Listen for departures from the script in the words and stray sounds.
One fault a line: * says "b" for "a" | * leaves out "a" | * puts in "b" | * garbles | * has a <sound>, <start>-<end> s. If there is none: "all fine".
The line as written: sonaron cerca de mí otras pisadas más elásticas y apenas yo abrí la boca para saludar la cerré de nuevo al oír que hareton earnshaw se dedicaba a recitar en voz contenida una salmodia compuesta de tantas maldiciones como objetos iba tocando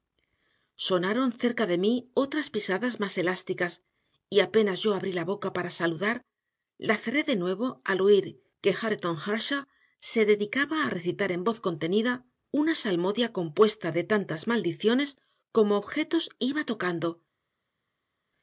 all fine